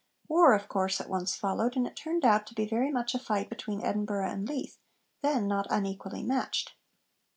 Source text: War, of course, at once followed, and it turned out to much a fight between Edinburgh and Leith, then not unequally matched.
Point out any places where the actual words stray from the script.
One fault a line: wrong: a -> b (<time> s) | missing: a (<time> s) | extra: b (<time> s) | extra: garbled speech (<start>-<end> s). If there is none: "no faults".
extra: be very (2.5 s)